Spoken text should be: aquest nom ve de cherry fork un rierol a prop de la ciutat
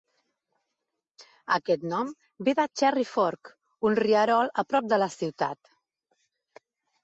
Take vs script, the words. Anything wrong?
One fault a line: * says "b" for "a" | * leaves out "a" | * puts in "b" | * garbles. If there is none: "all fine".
all fine